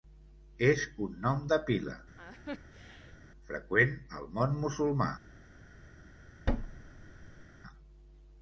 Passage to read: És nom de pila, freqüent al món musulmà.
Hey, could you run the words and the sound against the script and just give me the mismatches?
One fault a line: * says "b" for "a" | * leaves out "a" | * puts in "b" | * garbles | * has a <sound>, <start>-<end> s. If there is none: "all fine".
* puts in "un"
* has a laugh, 2.2-3.2 s
* has a thud, 6.5-7.5 s